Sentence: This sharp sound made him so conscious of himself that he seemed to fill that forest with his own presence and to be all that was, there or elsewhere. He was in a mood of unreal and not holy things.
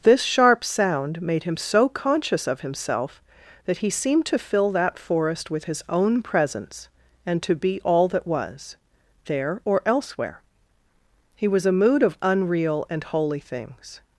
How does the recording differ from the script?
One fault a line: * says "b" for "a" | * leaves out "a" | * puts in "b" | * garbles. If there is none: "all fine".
* leaves out "in"
* leaves out "not"